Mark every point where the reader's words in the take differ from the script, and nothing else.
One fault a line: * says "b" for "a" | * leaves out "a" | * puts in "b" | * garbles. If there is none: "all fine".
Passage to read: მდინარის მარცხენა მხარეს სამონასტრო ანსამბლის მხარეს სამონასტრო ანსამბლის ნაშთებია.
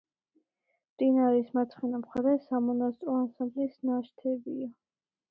* leaves out "მხარეს სამონასტრო ანსამბლის"